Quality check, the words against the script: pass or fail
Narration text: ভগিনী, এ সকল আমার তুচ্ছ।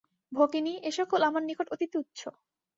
fail